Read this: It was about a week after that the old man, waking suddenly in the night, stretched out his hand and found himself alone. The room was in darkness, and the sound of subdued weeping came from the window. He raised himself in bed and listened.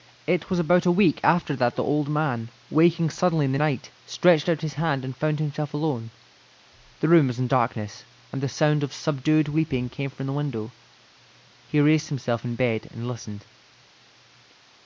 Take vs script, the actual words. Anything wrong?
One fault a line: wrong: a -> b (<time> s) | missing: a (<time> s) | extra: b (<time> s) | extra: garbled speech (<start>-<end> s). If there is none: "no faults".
no faults